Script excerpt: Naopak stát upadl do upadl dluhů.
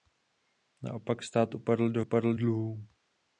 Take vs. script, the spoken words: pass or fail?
pass